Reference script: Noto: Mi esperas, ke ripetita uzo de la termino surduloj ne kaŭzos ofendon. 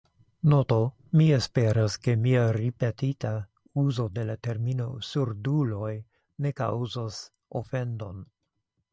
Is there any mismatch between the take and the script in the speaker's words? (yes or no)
yes